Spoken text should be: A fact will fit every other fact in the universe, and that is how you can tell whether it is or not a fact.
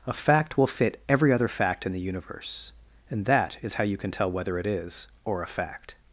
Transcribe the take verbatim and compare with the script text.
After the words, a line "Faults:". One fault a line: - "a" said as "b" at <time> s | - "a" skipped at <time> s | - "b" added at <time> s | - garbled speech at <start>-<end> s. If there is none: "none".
A fact will fit every other fact in the universe, and that is how you can tell whether it is or a fact.
Faults:
- "not" skipped at 5.4 s